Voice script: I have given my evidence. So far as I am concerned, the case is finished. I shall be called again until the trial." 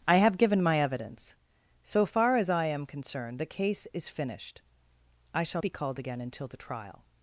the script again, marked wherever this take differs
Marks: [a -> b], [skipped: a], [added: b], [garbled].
I have given my evidence. So far as I am concerned, the case is finished. I shall be called again until the trial."